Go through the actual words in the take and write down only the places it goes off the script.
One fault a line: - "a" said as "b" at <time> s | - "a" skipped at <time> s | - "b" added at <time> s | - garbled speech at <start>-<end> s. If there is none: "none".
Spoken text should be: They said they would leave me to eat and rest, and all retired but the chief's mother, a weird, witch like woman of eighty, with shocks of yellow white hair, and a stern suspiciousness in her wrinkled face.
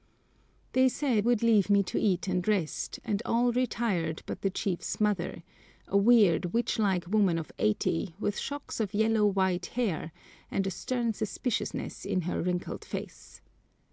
- "they" skipped at 1.2 s